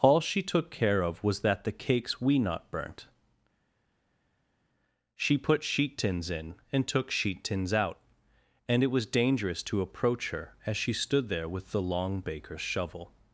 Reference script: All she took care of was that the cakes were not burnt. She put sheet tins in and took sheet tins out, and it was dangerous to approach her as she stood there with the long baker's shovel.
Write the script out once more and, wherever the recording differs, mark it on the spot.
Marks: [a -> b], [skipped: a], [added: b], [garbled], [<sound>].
All she took care of was that the cakes [were -> we] not burnt. She put sheet tins in and took sheet tins out, and it was dangerous to approach her as she stood there with the long baker's shovel.